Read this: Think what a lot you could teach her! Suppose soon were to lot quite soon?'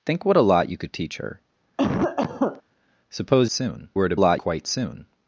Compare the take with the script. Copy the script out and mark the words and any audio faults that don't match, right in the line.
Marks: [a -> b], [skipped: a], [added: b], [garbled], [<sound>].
Think what a lot you could teach her! [cough] Suppose soon were to lot quite soon?'